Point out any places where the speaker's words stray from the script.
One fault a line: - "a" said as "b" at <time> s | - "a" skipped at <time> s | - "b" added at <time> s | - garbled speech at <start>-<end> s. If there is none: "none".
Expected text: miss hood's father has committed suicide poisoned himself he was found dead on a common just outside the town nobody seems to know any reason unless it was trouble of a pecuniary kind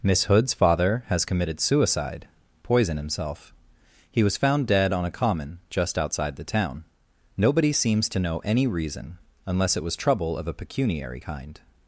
none